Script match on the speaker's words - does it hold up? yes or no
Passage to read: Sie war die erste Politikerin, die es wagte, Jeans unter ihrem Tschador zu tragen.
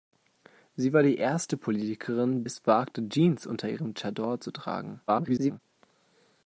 no